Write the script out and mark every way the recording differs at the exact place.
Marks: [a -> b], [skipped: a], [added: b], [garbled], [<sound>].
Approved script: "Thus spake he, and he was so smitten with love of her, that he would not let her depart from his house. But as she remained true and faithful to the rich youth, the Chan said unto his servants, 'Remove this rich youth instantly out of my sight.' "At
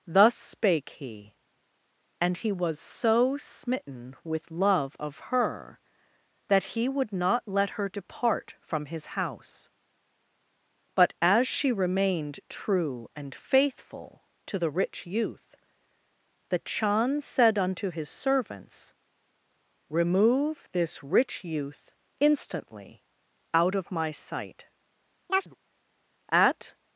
"Thus spake he, and he was so smitten with love of her, that he would not let her depart from his house. But as she remained true and faithful to the rich youth, the Chan said unto his servants, 'Remove this rich youth instantly out of my sight.' [chirp] "At